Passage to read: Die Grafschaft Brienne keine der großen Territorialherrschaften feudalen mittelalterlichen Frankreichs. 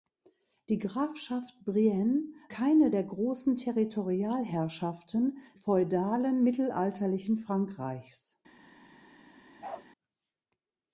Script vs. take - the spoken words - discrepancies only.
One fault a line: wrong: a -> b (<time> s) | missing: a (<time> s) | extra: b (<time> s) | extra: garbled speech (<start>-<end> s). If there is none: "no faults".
no faults